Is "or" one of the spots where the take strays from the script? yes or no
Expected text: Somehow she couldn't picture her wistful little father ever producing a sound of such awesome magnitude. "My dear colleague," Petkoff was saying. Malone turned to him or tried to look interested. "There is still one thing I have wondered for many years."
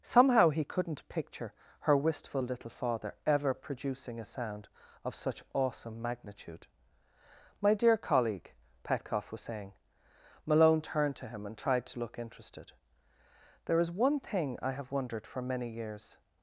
yes